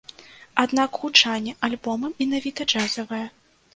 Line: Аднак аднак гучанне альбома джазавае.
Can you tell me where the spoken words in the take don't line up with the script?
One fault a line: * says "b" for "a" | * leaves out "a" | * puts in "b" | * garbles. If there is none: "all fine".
* leaves out "аднак"
* puts in "менавіта"